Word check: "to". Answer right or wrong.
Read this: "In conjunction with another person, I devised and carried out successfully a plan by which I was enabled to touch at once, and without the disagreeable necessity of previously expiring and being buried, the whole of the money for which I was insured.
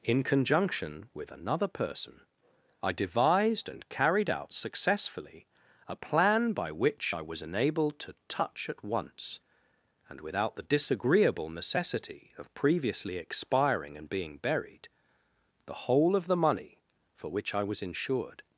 right